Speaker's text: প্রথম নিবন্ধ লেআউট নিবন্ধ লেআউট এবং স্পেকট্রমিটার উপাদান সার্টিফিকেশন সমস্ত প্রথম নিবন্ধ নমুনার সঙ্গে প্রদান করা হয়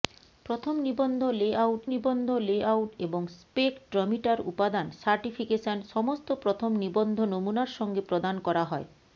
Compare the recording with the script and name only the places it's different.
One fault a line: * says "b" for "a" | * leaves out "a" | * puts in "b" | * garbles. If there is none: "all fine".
all fine